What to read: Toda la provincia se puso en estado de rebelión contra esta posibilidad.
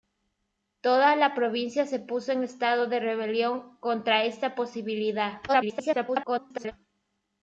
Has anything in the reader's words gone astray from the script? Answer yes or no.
yes